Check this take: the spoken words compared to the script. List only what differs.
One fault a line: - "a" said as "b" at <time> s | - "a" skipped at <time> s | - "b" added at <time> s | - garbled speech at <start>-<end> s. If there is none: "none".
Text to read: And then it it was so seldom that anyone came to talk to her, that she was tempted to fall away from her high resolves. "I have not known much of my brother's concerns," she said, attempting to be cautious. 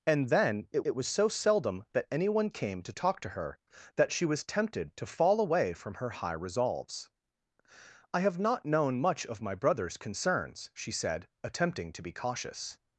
none